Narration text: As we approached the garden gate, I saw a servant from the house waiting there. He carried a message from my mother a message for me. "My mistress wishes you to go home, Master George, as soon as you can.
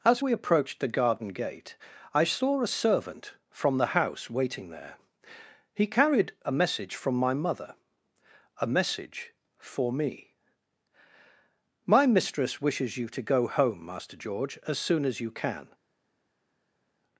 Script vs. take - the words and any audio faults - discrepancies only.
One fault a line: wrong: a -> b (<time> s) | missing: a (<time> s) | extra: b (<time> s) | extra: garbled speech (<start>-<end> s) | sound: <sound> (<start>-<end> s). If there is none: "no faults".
no faults